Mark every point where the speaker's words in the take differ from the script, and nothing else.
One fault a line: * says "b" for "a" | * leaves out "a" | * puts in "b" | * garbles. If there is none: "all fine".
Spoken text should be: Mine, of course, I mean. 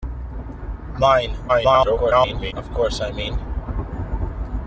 * garbles